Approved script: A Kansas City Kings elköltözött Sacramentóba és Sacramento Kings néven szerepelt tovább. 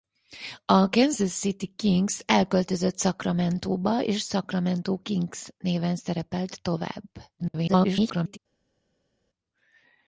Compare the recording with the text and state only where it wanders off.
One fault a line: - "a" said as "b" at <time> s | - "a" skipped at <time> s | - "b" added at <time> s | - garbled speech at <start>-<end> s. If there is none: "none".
- garbled speech at 7.4-8.4 s